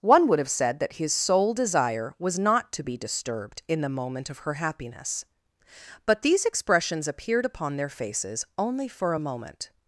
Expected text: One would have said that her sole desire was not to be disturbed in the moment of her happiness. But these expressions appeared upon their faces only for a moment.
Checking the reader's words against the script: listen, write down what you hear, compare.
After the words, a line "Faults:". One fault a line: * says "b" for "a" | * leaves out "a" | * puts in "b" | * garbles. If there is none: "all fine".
One would have said that his sole desire was not to be disturbed in the moment of her happiness. But these expressions appeared upon their faces only for a moment.
Faults:
* says "his" for "her"